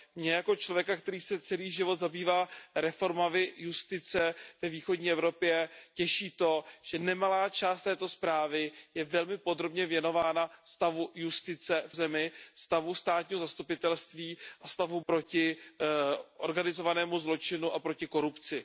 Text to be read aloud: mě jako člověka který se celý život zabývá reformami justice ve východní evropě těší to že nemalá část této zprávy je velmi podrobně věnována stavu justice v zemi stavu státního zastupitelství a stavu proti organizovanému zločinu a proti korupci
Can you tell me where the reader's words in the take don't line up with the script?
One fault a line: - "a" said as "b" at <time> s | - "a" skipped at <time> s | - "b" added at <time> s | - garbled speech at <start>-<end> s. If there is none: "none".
none